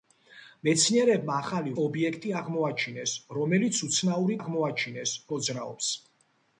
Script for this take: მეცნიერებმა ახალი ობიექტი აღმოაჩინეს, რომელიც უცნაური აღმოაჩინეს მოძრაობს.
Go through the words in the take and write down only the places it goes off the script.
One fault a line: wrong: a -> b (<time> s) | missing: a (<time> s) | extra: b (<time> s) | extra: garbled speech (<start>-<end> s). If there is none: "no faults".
no faults